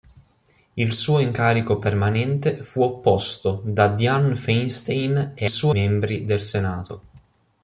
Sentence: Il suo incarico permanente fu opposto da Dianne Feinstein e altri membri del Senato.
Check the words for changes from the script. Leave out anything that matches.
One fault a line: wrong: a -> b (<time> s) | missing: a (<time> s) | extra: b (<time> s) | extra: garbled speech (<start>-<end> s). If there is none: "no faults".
wrong: altri -> suo (5.5 s)